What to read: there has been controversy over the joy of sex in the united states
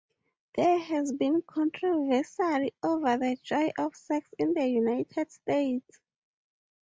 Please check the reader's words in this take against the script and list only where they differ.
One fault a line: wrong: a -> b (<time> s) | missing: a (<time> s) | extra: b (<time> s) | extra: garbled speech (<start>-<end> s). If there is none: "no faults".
no faults